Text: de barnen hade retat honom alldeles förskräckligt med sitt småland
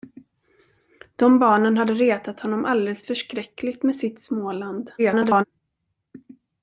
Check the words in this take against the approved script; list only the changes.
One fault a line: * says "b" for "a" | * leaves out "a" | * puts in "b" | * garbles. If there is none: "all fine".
* garbles